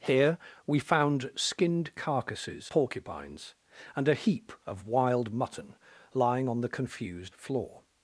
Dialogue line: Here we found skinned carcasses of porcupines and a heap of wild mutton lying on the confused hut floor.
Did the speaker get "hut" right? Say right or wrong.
wrong